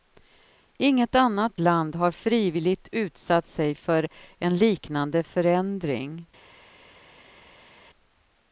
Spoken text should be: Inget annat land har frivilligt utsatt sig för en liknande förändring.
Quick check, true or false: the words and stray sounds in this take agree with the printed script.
true